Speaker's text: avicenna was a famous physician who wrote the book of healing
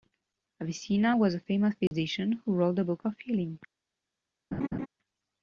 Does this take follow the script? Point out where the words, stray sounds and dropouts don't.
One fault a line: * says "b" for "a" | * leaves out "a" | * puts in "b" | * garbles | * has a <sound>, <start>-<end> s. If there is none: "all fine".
* has a dropout, 1.9-1.9 s
* has a laugh, 4.5-4.9 s